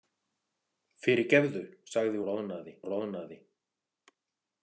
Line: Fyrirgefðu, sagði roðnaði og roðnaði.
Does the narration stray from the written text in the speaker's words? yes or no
no